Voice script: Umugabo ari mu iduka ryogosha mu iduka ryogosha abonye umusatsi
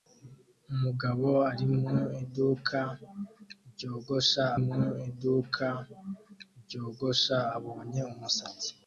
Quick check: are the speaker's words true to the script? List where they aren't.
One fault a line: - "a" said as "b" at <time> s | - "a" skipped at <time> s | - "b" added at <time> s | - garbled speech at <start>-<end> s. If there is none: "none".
none